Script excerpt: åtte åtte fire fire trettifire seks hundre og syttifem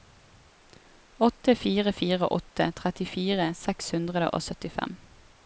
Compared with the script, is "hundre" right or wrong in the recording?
right